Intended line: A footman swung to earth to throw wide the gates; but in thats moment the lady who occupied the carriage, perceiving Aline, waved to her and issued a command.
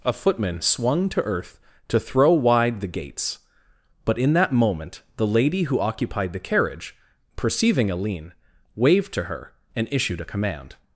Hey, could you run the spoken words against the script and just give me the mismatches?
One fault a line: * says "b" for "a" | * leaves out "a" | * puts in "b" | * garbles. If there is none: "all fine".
* says "that" for "thats"